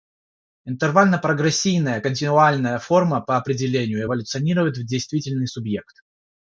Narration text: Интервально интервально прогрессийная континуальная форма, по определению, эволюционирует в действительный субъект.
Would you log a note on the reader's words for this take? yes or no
yes